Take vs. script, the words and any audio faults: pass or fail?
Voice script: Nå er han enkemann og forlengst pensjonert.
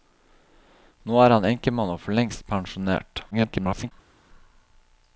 fail